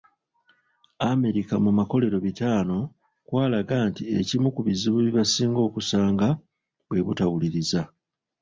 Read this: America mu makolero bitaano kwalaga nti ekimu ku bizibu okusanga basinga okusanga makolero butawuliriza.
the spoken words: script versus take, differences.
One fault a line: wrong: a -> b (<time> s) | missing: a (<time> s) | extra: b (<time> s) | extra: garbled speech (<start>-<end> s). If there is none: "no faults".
wrong: okusanga -> bye (5.0 s)
wrong: makolero -> bwe (6.9 s)